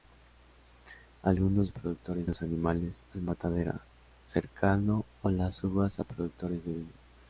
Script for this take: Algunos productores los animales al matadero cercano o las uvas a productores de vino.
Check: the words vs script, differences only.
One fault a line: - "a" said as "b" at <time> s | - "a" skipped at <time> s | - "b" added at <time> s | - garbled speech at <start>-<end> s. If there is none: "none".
none